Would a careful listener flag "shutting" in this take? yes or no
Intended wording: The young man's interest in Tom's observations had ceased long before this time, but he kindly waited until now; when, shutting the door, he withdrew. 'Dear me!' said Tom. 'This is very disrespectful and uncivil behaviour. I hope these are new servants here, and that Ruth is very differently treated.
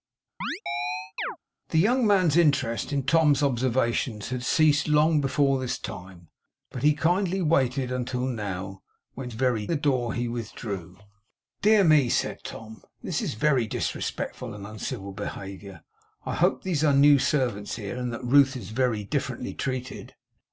yes